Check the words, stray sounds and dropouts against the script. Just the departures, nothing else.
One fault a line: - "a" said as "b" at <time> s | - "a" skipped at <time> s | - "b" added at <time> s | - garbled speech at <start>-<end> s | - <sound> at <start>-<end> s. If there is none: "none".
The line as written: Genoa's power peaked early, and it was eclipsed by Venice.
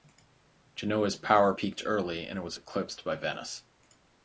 none